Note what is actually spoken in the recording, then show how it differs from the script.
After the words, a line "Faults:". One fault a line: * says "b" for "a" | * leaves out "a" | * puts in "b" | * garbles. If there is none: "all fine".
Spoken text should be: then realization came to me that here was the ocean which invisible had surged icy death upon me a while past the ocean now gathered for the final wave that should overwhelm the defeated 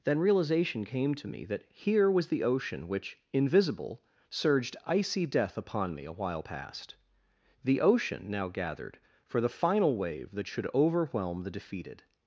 then realization came to me that here was the ocean which invisible surged icy death upon me a while past the ocean now gathered for the final wave that should overwhelm the defeated
Faults:
* leaves out "had"